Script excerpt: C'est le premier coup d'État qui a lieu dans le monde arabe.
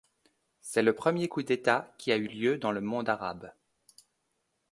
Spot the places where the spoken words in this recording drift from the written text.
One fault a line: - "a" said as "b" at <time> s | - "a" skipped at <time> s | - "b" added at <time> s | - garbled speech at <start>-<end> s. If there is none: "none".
- "eu" added at 2.2 s